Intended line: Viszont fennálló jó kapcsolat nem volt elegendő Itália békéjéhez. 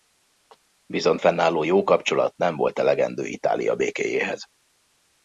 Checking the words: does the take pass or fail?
pass